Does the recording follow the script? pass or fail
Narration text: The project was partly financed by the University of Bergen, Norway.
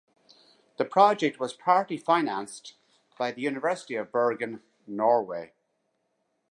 pass